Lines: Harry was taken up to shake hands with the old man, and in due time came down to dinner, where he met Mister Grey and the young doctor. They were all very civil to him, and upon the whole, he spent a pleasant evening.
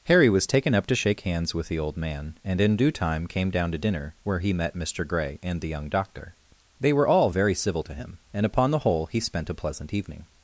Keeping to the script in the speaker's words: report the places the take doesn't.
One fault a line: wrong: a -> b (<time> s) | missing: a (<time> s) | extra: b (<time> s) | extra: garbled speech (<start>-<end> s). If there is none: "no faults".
no faults